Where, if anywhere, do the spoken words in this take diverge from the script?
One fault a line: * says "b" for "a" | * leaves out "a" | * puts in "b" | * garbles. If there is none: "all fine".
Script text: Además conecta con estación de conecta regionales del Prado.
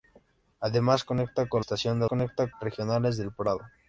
all fine